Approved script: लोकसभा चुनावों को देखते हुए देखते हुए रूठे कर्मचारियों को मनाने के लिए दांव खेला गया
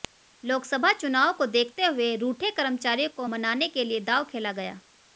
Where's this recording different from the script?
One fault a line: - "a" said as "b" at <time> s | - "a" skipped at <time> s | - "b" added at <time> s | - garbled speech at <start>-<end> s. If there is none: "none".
- "देखते हुए" skipped at 2.1 s